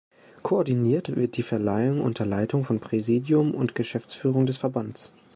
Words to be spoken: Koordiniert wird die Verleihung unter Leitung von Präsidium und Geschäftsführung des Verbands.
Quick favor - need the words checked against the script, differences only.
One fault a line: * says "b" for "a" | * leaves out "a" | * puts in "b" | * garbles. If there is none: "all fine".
all fine